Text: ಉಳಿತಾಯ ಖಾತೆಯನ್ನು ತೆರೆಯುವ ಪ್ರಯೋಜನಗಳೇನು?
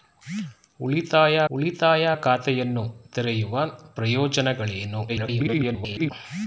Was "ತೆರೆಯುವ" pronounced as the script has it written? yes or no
yes